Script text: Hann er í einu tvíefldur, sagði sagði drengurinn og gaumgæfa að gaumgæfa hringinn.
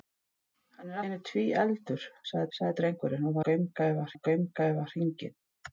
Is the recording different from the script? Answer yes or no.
no